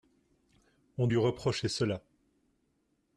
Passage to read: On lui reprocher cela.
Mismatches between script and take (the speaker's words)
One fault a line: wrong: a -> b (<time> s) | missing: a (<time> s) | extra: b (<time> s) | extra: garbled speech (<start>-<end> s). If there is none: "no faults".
no faults